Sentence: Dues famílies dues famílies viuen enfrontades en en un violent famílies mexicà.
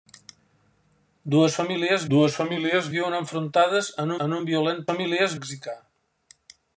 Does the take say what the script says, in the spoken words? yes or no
yes